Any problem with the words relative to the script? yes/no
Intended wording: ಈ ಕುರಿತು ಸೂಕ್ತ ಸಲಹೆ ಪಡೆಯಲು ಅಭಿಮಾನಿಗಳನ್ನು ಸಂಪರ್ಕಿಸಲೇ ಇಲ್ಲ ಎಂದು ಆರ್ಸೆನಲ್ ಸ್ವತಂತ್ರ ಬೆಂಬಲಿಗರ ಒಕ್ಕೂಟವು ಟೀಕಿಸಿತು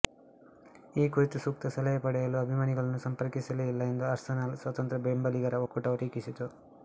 no